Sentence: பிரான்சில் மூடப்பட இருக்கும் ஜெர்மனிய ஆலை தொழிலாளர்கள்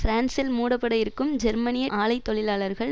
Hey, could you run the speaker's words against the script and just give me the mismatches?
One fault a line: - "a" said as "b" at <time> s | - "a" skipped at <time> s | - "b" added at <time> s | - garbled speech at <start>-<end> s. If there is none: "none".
none